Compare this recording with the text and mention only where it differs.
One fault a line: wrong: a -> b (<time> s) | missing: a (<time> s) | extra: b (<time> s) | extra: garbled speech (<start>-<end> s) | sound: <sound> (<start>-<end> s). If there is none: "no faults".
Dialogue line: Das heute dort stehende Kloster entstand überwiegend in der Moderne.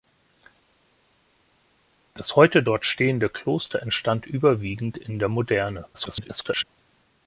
extra: garbled speech (5.9-6.6 s)